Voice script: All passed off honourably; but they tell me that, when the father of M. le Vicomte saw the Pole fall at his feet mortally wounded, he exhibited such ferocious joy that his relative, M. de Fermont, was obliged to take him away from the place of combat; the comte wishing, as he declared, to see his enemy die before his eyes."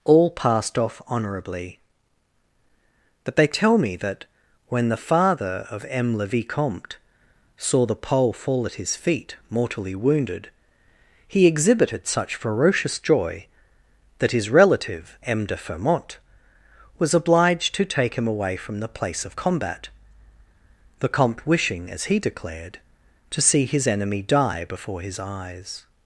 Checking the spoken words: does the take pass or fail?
pass